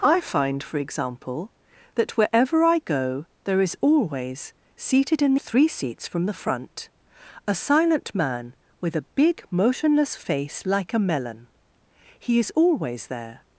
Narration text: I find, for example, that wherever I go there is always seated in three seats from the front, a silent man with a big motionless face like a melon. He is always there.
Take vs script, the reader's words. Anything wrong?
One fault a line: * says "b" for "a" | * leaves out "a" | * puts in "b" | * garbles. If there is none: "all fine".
all fine